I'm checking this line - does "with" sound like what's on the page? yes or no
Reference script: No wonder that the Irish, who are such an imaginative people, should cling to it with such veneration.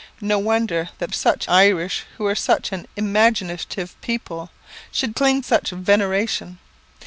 no